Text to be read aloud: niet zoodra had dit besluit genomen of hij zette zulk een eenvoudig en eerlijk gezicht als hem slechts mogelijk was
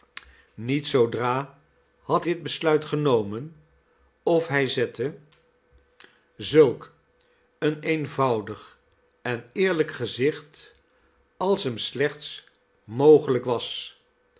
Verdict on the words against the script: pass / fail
pass